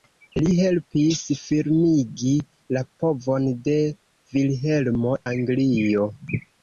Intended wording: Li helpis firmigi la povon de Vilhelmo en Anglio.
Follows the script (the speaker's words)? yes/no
no